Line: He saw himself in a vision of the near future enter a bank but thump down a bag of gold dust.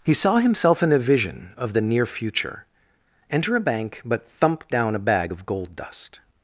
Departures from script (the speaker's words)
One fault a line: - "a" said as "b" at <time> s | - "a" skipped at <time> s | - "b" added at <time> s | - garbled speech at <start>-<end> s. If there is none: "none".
none